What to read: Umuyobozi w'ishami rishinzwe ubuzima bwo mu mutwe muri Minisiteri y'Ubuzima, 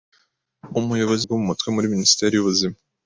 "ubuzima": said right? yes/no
no